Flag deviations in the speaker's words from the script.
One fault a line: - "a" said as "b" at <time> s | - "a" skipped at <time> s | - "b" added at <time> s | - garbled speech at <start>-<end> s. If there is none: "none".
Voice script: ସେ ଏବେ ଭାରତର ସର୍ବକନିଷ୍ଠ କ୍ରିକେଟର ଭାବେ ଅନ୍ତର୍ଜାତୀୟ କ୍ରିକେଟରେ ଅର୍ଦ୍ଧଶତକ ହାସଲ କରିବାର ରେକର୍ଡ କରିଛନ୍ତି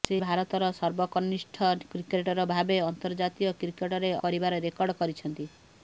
- "ଏବେ" skipped at 0.2 s
- "ଅର୍ଦ୍ଧଶତକ ହାସଲ" skipped at 4.1 s